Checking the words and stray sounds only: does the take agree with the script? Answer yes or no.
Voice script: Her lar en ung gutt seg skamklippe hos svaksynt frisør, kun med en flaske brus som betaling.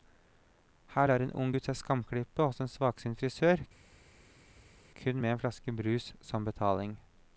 no